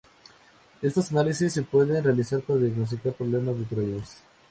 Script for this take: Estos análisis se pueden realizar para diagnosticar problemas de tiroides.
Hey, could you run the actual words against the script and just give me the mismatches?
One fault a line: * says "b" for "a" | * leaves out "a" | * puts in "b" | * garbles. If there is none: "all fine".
all fine